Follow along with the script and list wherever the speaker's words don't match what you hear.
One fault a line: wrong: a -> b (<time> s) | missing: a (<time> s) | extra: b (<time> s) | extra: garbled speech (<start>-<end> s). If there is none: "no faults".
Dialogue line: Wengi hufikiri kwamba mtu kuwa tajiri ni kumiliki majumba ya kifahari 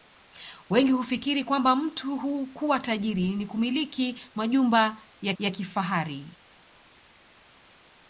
extra: ya (5.4 s)